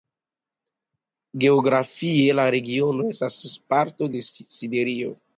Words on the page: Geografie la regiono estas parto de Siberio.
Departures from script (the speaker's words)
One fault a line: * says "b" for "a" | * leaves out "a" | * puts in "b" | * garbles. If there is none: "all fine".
all fine